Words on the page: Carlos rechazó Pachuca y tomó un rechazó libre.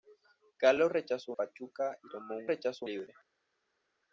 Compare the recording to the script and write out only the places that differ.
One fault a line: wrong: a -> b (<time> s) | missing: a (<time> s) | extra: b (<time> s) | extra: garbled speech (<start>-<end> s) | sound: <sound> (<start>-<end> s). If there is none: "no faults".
no faults